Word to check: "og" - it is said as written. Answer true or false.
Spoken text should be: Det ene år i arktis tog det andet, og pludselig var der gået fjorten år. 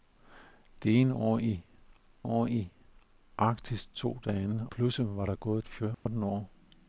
false